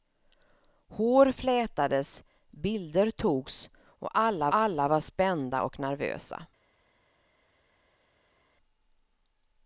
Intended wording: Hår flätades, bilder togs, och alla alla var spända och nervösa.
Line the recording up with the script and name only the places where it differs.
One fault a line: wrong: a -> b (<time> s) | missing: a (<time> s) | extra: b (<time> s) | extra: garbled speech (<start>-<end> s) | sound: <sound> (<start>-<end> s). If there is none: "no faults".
no faults